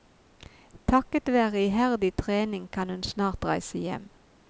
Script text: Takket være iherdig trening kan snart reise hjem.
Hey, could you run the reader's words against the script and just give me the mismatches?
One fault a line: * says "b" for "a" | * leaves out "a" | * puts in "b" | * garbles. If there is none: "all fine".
* puts in "hun"